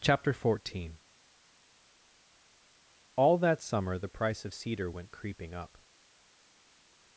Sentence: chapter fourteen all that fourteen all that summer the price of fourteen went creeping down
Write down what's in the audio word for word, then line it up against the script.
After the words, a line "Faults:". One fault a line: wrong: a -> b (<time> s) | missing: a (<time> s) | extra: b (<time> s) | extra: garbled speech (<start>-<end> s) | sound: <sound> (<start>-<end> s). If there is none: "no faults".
chapter fourteen all that summer the price of cedar went creeping up
Faults:
missing: fourteen all that (3.6 s)
wrong: fourteen -> cedar (4.5 s)
wrong: down -> up (5.5 s)